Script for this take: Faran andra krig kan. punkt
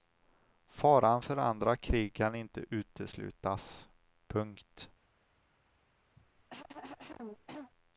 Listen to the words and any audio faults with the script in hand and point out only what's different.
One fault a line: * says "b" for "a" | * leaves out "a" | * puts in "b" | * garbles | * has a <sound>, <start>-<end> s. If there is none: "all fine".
* puts in "för"
* puts in "inte uteslutas"
* has a cough, 6.2-7.7 s